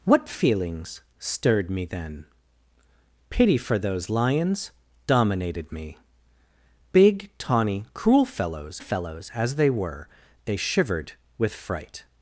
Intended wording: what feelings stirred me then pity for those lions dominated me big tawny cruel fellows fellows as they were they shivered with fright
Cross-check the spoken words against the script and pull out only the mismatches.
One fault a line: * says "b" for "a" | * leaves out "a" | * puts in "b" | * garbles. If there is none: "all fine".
all fine